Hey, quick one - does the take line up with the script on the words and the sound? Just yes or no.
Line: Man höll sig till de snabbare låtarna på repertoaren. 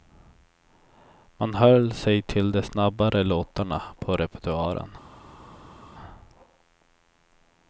yes